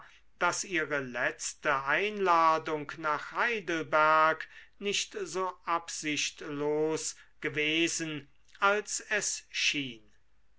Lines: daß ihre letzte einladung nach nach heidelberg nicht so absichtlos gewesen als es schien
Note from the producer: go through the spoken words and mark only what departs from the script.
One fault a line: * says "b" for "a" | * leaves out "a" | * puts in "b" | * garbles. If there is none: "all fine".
* leaves out "nach"